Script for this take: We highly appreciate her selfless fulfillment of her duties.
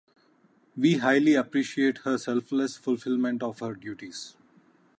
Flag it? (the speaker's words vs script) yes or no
no